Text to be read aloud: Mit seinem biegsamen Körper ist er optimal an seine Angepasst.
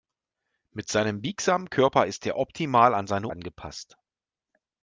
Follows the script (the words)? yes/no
yes